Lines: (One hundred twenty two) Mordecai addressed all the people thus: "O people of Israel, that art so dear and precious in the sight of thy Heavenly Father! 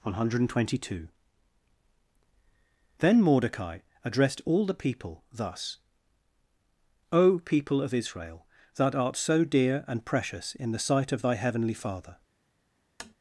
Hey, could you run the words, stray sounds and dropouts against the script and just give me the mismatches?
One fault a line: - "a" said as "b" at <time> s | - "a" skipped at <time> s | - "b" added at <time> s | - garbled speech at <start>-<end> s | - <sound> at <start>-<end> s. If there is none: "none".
- "Then" added at 3.0 s
- tap at 13.0-13.1 s